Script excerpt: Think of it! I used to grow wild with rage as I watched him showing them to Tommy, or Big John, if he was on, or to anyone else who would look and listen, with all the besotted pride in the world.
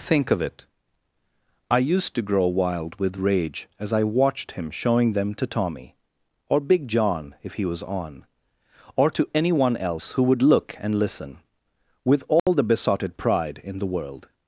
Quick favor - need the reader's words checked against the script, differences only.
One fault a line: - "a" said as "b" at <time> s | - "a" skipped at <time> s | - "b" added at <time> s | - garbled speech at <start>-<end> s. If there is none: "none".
none